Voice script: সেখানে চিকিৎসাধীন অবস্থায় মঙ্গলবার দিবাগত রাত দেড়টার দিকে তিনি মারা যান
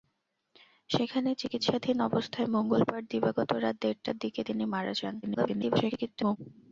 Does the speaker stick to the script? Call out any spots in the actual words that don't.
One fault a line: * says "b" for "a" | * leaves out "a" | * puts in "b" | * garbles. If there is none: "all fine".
* garbles